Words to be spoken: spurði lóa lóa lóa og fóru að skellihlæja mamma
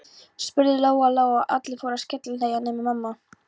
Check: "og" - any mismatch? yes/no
yes